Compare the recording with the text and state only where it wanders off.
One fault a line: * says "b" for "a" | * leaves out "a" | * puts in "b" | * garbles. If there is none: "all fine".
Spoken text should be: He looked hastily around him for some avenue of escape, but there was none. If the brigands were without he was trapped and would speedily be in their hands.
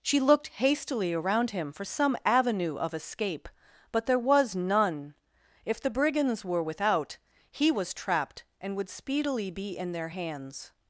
* says "She" for "He"